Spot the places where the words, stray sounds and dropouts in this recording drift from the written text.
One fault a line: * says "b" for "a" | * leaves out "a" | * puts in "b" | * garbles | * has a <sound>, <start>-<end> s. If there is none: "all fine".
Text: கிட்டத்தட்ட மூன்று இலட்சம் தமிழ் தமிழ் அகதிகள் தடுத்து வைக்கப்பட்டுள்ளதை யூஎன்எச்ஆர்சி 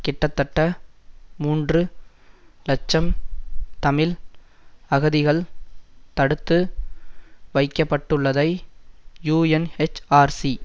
* leaves out "தமிழ்"